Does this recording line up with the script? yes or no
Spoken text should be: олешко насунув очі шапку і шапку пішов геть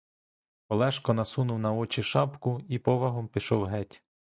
no